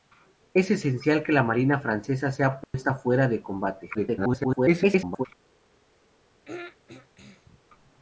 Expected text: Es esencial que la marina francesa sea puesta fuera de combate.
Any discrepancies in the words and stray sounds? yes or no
yes